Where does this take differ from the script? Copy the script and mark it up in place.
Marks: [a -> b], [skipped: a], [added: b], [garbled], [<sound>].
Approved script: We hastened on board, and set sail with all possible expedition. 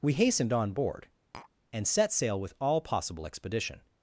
We hastened on board, [tap] and set sail with all possible expedition.